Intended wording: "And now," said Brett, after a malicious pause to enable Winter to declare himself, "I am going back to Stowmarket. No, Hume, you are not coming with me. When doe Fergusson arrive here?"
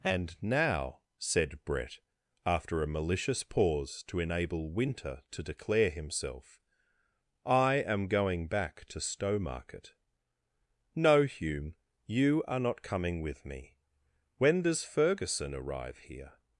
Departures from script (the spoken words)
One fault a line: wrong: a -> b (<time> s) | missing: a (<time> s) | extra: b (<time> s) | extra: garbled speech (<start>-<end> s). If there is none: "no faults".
wrong: doe -> does (14.6 s)